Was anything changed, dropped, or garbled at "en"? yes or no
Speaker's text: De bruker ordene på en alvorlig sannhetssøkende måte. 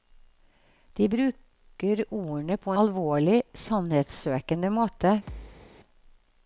yes